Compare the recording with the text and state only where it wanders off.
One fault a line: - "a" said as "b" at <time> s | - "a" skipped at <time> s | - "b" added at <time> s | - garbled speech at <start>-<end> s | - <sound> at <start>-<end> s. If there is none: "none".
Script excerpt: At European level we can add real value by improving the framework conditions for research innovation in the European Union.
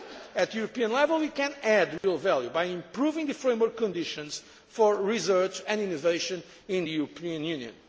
- dropout at 2.0-2.0 s
- "and" added at 5.7 s